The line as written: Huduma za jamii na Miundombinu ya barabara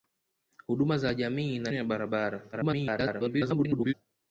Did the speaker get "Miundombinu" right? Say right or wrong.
wrong